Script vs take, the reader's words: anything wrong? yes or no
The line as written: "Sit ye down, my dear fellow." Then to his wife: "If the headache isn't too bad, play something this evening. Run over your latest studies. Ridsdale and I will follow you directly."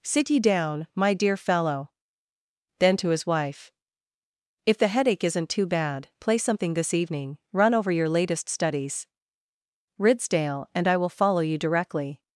no